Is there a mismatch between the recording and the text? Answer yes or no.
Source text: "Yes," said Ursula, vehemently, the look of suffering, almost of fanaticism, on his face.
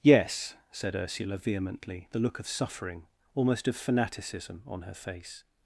yes